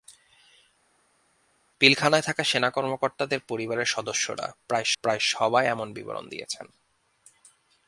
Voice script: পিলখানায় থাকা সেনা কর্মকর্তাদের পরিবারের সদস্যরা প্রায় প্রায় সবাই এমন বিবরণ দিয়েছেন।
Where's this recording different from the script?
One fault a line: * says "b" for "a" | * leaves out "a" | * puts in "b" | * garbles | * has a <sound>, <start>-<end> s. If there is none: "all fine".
all fine